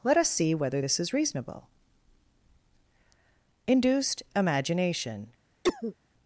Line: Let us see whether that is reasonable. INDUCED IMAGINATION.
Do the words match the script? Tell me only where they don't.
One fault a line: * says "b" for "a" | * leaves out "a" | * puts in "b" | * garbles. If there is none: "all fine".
* says "this" for "that"